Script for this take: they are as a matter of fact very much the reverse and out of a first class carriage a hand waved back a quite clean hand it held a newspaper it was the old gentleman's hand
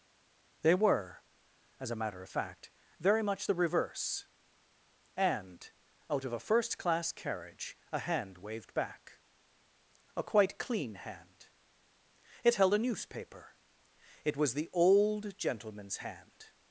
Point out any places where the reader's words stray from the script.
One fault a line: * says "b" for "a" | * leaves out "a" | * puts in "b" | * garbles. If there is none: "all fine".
* says "were" for "are"